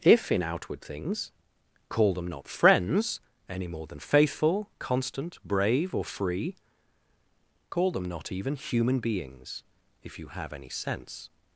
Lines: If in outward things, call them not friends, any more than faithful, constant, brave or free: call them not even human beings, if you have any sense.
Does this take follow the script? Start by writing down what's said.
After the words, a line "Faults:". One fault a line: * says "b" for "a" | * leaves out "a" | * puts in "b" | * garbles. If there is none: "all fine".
If in outward things, call them not friends, any more than faithful, constant, brave or free: call them not even human beings, if you have any sense.
Faults:
all fine